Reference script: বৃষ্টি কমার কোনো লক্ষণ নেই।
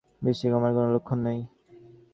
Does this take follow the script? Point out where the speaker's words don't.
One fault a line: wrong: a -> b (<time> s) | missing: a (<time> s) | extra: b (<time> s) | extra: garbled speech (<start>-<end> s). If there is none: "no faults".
no faults